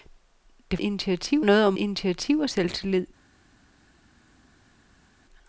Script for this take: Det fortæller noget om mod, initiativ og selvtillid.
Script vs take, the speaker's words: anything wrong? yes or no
yes